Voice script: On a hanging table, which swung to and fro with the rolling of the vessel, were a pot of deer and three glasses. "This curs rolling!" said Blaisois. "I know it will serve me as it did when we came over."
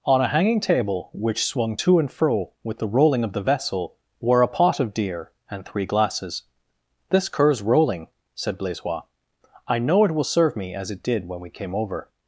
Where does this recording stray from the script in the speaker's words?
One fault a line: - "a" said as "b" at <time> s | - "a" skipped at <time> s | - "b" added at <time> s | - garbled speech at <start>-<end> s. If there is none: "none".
none